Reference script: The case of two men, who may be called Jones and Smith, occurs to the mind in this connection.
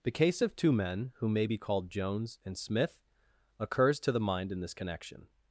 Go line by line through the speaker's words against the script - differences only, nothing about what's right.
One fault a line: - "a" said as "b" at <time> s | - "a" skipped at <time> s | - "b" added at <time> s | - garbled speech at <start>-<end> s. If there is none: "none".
none